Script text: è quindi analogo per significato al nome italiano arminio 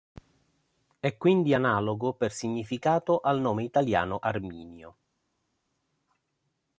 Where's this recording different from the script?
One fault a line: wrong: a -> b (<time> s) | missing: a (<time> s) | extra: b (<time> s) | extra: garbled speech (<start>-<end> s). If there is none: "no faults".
no faults